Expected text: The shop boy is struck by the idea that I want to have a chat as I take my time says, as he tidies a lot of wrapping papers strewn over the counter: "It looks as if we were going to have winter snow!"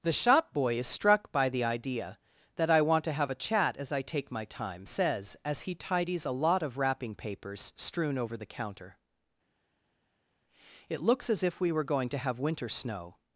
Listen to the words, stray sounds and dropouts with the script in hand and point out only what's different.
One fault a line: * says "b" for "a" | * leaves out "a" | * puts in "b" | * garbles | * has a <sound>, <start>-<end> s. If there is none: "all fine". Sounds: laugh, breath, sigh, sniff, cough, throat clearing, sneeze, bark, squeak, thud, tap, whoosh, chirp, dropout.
all fine